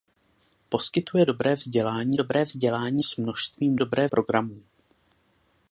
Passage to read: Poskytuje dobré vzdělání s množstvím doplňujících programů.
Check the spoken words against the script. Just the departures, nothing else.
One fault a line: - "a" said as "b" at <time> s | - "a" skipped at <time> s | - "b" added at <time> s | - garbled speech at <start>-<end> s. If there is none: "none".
- "dobré vzdělání" added at 2.2 s
- "doplňujících" said as "dobré" at 3.8 s